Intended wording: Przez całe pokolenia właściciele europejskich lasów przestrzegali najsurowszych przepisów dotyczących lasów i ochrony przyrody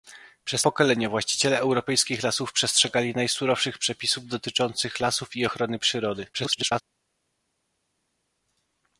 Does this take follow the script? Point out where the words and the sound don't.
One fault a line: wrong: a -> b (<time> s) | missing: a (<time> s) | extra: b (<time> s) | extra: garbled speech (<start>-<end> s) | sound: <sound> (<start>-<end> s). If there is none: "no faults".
missing: całe (0.6 s)
extra: garbled speech (6.3-6.8 s)